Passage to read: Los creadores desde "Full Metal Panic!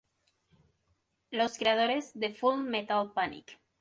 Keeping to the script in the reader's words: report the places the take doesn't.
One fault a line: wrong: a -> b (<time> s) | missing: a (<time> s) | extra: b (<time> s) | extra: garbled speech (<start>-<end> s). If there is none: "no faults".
wrong: desde -> de (2.1 s)